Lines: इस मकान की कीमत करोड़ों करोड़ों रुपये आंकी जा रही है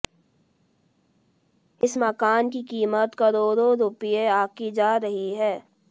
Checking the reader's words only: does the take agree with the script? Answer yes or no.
no